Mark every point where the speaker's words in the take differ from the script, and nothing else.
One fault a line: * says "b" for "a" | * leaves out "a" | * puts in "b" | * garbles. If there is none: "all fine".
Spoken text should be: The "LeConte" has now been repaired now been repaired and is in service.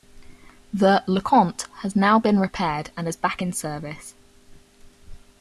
* leaves out "now been repaired"
* puts in "back"